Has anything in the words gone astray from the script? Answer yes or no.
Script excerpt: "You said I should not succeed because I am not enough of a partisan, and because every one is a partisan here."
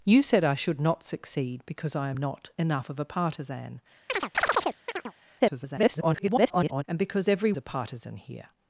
yes